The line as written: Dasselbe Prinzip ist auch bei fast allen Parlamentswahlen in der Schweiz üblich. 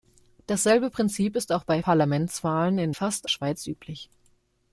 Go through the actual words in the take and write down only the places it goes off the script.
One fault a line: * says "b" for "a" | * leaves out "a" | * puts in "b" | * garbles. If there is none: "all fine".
* leaves out "fast allen"
* says "fast" for "der"